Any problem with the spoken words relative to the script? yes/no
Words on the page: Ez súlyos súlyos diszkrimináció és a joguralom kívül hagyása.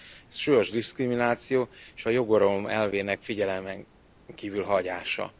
yes